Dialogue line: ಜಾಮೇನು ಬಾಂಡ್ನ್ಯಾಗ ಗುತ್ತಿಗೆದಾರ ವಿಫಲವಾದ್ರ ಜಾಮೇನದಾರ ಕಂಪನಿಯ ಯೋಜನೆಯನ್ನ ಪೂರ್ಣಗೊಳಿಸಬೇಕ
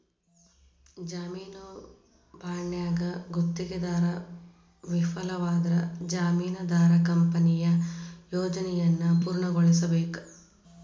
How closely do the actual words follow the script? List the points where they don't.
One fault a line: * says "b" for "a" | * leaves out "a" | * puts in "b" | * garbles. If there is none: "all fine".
all fine